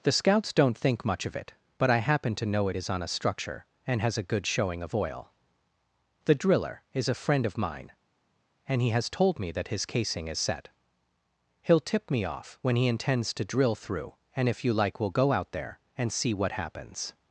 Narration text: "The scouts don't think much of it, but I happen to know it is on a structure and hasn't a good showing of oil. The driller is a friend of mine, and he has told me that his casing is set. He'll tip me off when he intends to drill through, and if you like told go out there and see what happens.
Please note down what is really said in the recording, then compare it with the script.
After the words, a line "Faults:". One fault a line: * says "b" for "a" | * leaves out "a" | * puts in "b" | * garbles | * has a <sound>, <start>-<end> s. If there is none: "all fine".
"The scouts don't think much of it, but I happen to know it is on a structure and has a good showing of oil. The driller is a friend of mine, and he has told me that his casing is set. He'll tip me off when he intends to drill through, and if you like we'll go out there and see what happens.
Faults:
* says "has" for "hasn't"
* says "we'll" for "told"